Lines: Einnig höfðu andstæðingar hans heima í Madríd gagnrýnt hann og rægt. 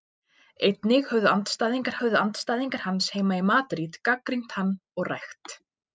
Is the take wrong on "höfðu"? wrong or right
right